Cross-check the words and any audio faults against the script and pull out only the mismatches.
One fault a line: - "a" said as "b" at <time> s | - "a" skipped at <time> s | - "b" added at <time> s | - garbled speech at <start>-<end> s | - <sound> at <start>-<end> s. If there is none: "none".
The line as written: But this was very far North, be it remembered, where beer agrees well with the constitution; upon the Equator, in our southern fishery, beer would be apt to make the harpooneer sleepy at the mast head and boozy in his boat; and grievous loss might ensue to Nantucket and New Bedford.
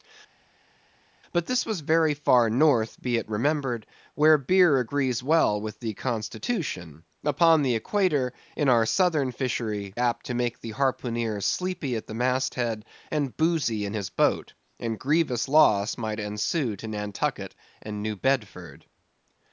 - "beer would be" skipped at 10.0 s